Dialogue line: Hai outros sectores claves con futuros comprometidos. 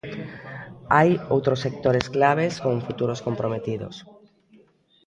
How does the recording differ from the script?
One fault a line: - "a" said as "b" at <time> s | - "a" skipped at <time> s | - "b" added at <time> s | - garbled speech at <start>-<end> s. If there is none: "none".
none